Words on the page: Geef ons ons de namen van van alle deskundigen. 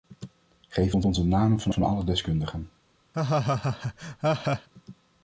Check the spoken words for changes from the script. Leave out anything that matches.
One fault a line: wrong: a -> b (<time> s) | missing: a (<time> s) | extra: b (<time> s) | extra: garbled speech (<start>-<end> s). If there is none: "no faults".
no faults